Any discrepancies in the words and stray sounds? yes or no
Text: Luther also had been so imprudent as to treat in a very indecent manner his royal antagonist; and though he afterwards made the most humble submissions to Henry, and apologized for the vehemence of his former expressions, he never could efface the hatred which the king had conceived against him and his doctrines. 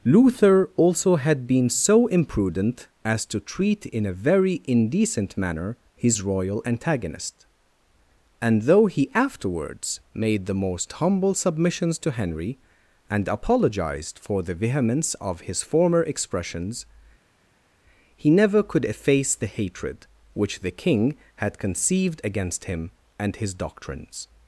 no